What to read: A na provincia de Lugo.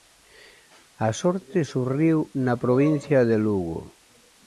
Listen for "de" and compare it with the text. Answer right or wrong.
right